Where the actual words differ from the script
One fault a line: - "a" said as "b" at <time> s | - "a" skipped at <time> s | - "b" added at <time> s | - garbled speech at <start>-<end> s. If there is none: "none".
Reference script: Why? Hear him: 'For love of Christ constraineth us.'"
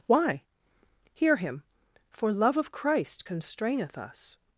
none